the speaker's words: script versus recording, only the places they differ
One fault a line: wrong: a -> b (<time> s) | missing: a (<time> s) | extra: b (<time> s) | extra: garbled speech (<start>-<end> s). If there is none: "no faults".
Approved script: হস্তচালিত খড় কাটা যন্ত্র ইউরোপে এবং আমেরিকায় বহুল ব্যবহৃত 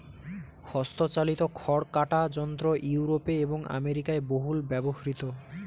no faults